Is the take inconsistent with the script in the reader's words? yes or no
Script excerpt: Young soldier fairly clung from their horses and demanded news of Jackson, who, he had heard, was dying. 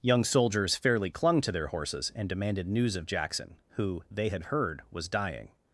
yes